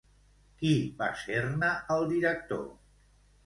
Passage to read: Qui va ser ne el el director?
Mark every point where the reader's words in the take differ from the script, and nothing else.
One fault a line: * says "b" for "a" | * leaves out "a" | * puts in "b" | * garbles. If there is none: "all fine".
* leaves out "el"